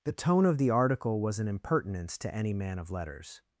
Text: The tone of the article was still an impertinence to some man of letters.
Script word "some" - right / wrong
wrong